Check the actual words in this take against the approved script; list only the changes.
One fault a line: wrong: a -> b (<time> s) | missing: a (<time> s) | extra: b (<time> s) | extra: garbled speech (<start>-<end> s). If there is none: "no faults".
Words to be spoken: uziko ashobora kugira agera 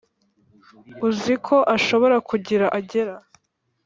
no faults